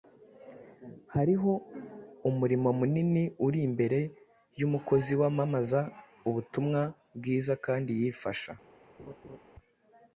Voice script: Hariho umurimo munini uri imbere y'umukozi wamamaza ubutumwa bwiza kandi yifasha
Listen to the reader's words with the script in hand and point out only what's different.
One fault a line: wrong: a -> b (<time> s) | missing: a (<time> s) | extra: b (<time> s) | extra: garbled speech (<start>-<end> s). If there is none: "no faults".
no faults